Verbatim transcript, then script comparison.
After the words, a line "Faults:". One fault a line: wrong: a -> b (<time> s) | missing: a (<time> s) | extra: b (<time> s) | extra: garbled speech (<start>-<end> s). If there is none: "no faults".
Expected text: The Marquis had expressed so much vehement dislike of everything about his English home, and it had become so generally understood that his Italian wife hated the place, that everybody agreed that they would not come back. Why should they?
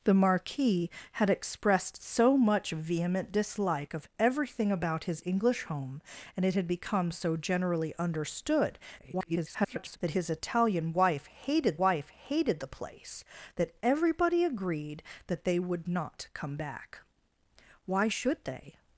The Marquis had expressed so much vehement dislike of everything about his English home, and it had become so generally understood [garbled] that his Italian wife hated wife hated the place, that everybody agreed that they would not come back. Why should they?
Faults:
extra: garbled speech (9.0-10.0 s)
extra: wife hated (11.8 s)